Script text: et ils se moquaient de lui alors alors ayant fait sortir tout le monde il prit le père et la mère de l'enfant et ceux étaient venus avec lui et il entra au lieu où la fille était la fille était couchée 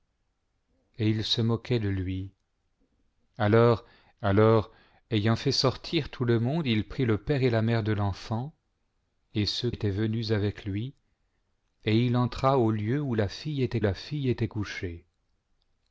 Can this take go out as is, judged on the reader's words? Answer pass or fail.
pass